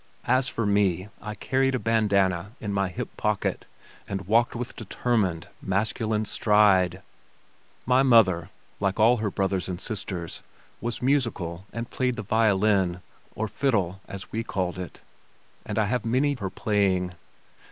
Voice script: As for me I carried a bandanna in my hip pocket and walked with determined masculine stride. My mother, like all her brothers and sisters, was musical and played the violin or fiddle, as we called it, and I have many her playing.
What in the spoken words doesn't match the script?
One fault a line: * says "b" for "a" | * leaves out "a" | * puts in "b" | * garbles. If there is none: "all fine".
all fine